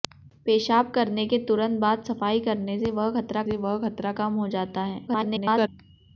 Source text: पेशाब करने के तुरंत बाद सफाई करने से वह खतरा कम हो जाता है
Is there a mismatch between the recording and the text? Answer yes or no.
yes